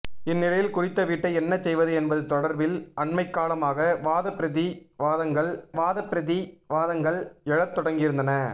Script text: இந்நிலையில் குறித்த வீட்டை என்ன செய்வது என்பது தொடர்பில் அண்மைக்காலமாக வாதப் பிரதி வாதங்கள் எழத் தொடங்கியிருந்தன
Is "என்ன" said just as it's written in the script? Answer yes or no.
yes